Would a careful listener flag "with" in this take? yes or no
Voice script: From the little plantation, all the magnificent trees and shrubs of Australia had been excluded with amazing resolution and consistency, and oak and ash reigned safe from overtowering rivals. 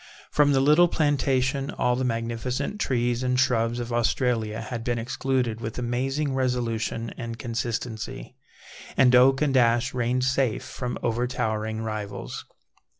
no